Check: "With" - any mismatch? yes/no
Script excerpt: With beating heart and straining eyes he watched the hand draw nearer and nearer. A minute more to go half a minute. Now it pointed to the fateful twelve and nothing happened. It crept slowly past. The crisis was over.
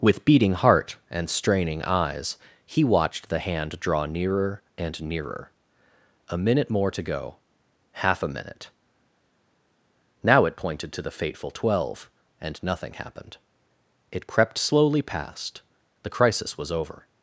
no